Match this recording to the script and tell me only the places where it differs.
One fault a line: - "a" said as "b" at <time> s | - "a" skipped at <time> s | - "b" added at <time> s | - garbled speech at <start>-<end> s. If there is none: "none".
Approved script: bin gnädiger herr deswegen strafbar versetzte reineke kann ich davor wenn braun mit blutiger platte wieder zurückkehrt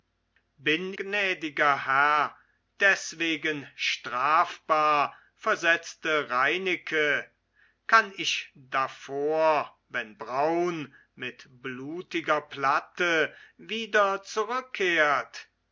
none